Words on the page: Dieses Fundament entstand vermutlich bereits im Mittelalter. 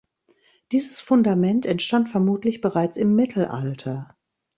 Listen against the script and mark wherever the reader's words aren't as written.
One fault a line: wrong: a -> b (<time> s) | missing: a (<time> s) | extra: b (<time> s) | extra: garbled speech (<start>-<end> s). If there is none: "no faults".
no faults